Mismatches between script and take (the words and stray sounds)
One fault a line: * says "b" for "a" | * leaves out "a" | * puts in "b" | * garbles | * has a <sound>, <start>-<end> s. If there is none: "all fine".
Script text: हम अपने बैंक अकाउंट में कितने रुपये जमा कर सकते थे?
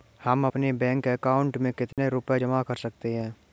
* has a dropout, 1.9-2.0 s
* says "हैं" for "थे"